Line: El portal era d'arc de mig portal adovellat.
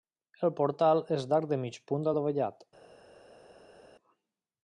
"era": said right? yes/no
no